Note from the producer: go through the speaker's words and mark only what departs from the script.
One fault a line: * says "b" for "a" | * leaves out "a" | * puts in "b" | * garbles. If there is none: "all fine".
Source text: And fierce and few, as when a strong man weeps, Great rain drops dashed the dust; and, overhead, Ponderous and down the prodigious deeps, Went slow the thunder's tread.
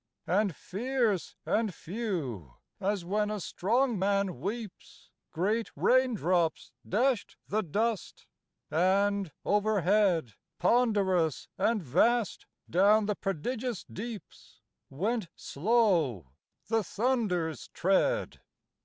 * puts in "vast"